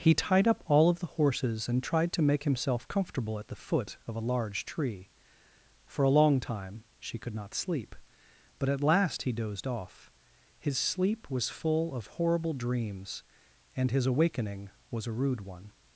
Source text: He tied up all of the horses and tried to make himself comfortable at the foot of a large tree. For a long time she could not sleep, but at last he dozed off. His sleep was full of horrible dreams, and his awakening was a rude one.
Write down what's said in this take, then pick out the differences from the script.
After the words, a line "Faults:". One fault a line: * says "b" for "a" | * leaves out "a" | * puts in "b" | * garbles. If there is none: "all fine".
He tied up all of the horses and tried to make himself comfortable at the foot of a large tree. For a long time she could not sleep, but at last he dozed off. His sleep was full of horrible dreams, and his awakening was a rude one.
Faults:
all fine